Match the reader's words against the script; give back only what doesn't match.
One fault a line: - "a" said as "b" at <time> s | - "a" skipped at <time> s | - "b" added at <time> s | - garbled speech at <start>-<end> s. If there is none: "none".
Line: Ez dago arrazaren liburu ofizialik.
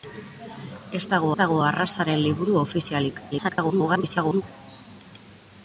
- "dago" added at 1.4 s
- garbled speech at 3.3-4.4 s